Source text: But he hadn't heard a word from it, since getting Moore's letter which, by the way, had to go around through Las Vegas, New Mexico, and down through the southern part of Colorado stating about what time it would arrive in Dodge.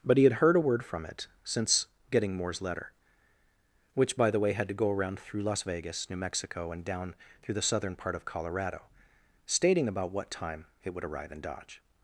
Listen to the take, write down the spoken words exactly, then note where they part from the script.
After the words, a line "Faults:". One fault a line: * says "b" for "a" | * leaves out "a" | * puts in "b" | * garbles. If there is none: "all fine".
But he had heard a word from it, since getting Moore's letter which, by the way, had to go around through Las Vegas, New Mexico, and down through the southern part of Colorado stating about what time it would arrive in Dodge.
Faults:
* says "had" for "hadn't"